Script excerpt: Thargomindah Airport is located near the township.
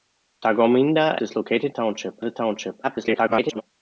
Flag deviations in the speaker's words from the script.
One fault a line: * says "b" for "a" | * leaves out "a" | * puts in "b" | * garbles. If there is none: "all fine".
* leaves out "Airport"
* says "township" for "near"
* garbles